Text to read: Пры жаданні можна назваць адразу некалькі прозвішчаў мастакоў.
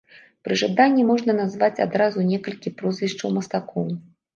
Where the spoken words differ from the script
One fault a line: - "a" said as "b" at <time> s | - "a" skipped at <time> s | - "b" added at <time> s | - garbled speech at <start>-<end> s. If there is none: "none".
none